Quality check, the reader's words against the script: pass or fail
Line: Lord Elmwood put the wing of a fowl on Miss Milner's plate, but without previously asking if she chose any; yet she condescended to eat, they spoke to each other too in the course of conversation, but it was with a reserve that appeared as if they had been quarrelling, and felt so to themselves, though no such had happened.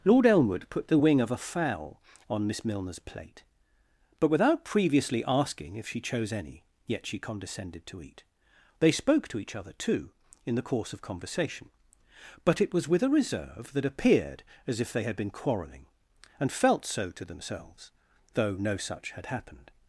pass